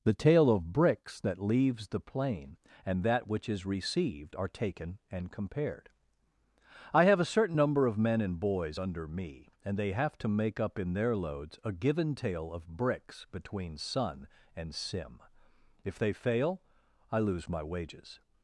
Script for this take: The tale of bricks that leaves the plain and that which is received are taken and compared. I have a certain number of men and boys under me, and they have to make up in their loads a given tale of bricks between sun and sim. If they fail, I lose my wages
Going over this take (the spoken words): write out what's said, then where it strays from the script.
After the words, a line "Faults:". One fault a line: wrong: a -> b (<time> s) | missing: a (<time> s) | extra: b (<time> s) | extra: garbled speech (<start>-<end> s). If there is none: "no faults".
The tale of bricks that leaves the plain and that which is received are taken and compared. I have a certain number of men and boys under me, and they have to make up in their loads a given tale of bricks between sun and sim. If they fail, I lose my wages
Faults:
no faults